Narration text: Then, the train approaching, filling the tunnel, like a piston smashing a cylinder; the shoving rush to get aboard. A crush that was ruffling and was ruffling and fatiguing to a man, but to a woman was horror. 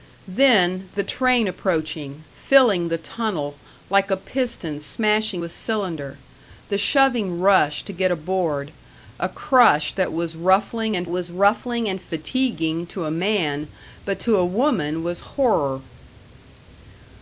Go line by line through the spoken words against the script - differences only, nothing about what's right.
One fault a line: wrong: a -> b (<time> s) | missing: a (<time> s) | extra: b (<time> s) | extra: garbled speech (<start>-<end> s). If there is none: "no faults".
no faults